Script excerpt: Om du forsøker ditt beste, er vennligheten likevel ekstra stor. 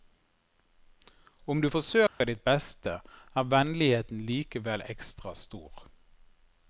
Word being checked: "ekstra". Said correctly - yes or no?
yes